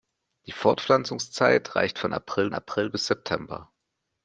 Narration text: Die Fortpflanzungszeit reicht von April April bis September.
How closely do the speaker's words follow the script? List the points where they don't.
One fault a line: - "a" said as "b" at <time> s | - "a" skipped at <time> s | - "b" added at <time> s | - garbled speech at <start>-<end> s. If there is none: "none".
none